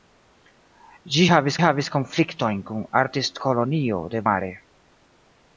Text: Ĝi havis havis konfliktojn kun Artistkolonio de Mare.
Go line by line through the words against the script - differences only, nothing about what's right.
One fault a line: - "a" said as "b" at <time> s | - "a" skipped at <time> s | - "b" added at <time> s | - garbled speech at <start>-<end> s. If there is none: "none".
none